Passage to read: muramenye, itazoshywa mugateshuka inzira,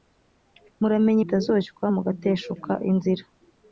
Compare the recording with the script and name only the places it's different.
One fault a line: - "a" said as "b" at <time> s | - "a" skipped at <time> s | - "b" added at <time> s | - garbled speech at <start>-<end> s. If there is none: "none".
none